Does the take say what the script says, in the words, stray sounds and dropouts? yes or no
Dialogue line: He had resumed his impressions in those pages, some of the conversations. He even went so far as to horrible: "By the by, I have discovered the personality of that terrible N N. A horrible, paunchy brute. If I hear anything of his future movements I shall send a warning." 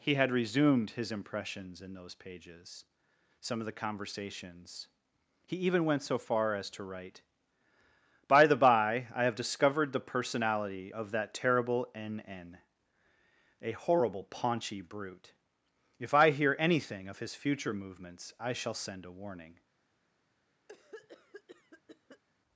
no